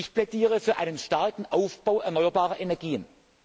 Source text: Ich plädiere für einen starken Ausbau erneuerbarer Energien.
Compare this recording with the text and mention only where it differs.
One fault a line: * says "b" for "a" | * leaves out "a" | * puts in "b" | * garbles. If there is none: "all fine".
all fine